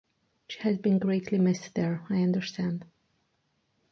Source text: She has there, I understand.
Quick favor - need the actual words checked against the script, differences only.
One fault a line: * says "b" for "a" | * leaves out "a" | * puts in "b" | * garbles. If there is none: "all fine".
* puts in "been greatly missed"